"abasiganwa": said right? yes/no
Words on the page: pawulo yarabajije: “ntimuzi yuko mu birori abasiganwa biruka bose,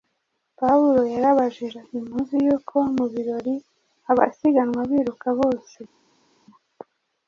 yes